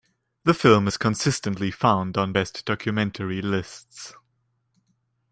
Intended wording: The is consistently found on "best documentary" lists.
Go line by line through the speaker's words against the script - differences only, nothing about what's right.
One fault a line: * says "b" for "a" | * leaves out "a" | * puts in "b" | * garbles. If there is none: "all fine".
* puts in "film"